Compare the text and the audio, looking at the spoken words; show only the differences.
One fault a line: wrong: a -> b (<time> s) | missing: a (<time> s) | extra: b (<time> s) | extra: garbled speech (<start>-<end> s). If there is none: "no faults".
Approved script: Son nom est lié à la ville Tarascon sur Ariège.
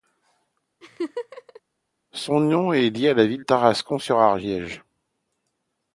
no faults